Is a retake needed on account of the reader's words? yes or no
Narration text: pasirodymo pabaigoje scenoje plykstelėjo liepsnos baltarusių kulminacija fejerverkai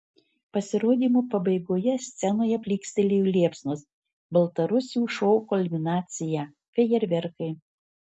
yes